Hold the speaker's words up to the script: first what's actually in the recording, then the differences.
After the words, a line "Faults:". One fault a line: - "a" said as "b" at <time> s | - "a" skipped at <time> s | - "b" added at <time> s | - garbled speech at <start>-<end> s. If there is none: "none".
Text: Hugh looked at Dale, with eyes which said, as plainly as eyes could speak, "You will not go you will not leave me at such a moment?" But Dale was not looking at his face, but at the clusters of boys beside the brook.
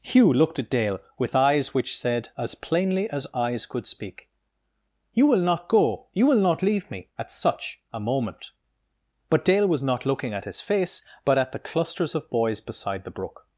Hugh looked at Dale, with eyes which said, as plainly as eyes could speak, "You will not go you will not leave me at such a moment?" But Dale was not looking at his face, but at the clusters of boys beside the brook.
Faults:
none